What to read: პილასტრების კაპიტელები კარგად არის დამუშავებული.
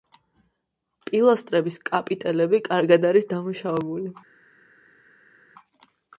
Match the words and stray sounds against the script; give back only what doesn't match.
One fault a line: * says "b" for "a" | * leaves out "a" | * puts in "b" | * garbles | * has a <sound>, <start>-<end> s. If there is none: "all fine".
all fine